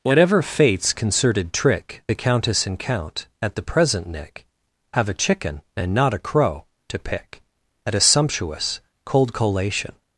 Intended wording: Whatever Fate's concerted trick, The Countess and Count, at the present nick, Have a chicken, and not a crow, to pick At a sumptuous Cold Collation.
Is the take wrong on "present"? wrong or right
right